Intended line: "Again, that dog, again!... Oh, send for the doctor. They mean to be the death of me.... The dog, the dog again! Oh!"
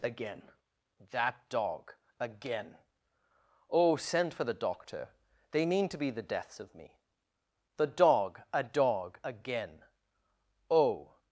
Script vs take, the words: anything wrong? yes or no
yes